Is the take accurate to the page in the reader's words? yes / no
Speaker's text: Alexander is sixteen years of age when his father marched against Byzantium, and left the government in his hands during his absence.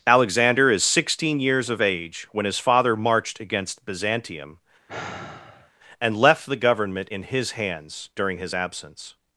yes